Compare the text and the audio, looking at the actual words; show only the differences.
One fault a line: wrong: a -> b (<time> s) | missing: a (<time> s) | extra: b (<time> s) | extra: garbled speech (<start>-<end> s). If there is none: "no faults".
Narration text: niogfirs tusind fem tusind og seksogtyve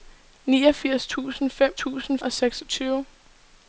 no faults